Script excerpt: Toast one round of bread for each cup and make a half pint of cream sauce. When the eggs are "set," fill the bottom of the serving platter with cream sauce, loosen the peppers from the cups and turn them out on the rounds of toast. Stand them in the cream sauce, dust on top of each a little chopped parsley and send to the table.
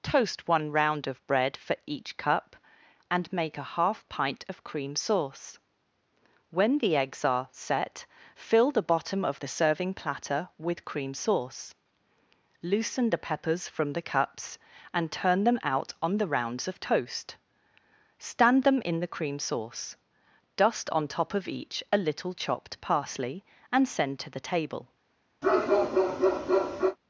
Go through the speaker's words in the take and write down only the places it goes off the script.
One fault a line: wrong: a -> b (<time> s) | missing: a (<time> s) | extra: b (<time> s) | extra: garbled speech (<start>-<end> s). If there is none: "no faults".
no faults